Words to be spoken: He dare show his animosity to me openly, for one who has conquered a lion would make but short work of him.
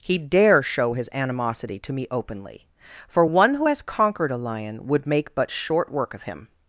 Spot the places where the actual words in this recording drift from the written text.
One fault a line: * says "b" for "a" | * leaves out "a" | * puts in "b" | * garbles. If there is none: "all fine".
all fine